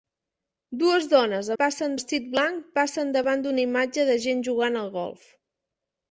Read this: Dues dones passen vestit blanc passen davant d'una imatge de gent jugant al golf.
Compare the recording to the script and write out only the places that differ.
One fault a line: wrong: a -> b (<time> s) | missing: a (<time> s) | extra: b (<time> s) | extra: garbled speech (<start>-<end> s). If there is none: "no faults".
no faults